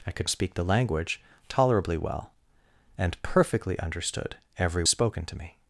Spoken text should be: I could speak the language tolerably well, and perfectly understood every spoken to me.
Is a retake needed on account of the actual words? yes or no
no